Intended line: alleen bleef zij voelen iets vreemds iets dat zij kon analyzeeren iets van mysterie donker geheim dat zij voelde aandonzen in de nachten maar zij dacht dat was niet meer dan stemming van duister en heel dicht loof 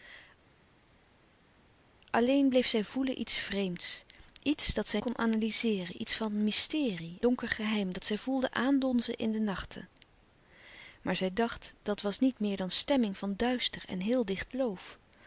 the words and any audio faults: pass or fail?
pass